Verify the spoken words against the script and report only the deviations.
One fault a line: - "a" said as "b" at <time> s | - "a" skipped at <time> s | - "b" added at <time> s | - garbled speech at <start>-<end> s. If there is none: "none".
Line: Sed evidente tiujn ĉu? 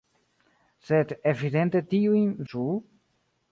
none